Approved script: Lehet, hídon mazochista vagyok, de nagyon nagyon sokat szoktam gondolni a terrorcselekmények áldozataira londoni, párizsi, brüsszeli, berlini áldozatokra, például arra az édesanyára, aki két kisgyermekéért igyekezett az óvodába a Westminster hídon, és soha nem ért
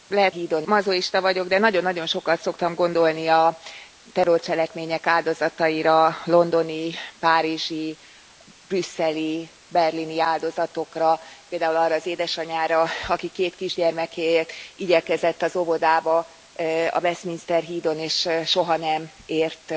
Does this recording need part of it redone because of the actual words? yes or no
no